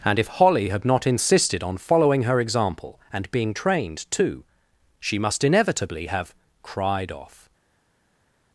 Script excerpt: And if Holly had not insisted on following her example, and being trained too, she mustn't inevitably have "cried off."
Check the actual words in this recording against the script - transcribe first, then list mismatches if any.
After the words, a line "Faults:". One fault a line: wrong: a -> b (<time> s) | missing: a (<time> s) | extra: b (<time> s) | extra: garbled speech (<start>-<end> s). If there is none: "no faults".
And if Holly had not insisted on following her example, and being trained too, she must inevitably have "cried off."
Faults:
wrong: mustn't -> must (5.2 s)